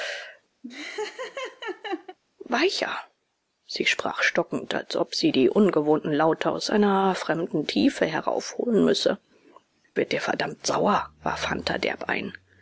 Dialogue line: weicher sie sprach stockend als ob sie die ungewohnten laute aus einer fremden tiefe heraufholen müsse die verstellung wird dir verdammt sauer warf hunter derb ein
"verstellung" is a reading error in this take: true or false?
true